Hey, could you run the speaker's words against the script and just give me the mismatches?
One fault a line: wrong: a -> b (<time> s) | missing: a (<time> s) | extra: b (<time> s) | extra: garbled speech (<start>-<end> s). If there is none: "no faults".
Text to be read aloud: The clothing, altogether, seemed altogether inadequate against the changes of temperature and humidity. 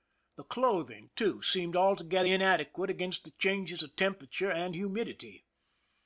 wrong: altogether -> too (1.1 s)